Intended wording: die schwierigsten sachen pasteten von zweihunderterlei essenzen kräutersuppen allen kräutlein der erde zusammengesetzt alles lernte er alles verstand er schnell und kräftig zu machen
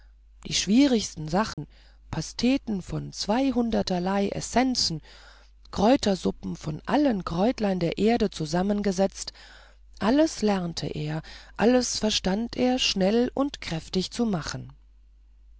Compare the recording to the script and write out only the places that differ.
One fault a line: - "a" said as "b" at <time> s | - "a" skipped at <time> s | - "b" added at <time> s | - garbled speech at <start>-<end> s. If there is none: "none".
- "von" added at 6.6 s